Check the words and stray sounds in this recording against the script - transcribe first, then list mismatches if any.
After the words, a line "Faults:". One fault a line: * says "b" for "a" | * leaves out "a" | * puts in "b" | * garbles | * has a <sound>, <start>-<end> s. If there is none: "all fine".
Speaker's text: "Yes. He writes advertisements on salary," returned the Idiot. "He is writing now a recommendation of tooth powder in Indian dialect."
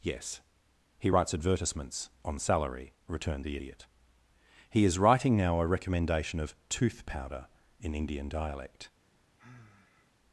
"Yes. He writes advertisements on salary," returned the Idiot. "He is writing now a recommendation of tooth powder in Indian dialect."
Faults:
* has a sigh, 9.4-10.1 s